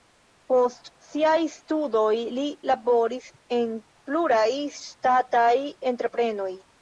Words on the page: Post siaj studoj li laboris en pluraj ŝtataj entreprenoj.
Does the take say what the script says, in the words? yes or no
yes